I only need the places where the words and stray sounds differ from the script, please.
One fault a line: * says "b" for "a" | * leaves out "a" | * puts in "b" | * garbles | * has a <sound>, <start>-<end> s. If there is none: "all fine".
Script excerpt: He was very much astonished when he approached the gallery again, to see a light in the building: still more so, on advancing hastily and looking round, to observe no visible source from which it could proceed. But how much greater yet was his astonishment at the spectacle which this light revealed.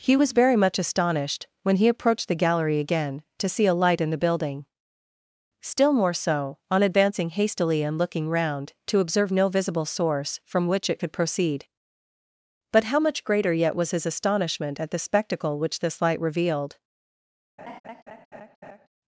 * has a laugh, 17.6-18.9 s